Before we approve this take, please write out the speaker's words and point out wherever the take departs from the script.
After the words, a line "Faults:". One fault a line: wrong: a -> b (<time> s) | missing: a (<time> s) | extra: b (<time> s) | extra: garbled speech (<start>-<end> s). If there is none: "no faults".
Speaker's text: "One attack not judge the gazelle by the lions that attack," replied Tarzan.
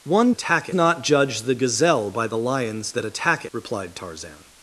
"One attack not judge the gazelle by the lions that attack," replied Tarzan.
Faults:
no faults